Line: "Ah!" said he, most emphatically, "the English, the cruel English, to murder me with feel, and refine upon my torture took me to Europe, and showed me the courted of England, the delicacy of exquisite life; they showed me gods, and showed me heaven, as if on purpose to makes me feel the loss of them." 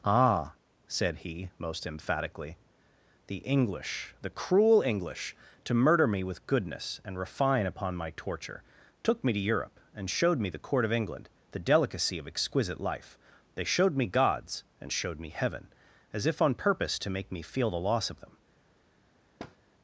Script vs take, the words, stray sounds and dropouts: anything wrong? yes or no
yes